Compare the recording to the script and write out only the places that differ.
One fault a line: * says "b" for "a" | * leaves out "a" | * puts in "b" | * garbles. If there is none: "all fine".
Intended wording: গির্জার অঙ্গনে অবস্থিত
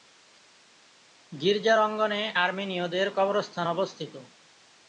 * puts in "আর্মেনীয়দের কবরস্থান"